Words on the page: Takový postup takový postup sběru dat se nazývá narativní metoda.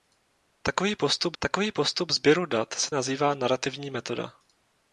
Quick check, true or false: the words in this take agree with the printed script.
true